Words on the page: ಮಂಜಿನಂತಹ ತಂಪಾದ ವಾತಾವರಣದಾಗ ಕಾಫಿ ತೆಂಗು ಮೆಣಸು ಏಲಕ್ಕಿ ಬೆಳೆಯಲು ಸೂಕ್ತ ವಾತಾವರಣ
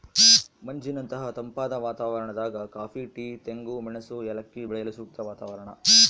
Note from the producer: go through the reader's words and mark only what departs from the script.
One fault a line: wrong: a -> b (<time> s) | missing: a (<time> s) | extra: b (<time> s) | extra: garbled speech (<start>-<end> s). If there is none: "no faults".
extra: ಟೀ (3.1 s)